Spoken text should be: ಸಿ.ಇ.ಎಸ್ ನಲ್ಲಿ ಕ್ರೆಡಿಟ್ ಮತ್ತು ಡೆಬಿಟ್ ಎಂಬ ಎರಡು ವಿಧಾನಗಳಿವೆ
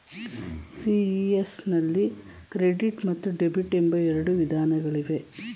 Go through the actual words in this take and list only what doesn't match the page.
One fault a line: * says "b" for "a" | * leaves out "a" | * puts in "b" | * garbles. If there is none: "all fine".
all fine